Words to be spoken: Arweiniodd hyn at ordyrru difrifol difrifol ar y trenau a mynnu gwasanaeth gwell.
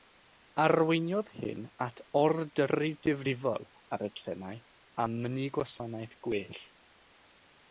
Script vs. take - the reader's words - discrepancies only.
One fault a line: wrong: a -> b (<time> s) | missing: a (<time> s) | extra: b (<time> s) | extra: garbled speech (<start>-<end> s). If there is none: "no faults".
missing: difrifol (3.7 s)